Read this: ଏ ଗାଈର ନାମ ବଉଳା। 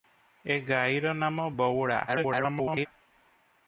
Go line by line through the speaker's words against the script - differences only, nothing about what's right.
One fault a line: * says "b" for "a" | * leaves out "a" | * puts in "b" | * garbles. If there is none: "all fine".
* garbles